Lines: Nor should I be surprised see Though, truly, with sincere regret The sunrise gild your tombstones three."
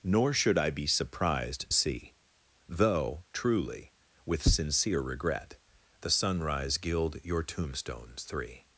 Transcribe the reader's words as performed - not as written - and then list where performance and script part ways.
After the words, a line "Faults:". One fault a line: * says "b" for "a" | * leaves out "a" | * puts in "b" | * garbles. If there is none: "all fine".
Nor should I be surprised see Though, truly, with sincere regret The sunrise gild your tombstones three."
Faults:
all fine